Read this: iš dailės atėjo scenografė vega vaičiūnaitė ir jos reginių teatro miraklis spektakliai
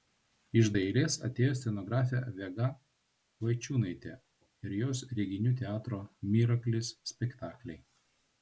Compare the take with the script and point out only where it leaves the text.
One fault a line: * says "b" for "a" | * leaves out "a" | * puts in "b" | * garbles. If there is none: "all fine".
all fine